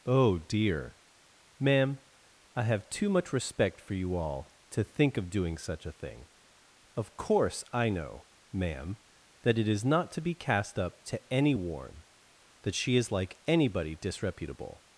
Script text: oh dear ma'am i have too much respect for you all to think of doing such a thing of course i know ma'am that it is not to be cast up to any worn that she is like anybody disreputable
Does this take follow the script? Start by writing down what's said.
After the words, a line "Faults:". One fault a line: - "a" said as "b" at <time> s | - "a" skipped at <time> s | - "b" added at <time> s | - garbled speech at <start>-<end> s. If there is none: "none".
oh dear ma'am i have too much respect for you all to think of doing such a thing of course i know ma'am that it is not to be cast up to any worn that she is like anybody disreputable
Faults:
none